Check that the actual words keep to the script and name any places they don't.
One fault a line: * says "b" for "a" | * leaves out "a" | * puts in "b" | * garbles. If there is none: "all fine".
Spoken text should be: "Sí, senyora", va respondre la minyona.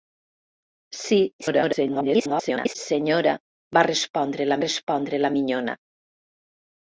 * garbles
* puts in "respondre la"